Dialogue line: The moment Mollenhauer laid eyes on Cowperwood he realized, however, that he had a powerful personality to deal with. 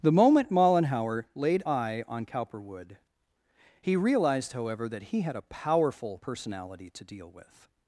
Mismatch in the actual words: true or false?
true